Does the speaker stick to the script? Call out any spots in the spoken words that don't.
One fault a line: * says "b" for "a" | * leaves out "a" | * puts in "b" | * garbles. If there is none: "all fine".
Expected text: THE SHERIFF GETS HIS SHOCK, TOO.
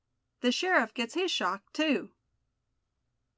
all fine